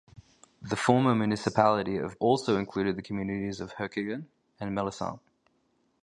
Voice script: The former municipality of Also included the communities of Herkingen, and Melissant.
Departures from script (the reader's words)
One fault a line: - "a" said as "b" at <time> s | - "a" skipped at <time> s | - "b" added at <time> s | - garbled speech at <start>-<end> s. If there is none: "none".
none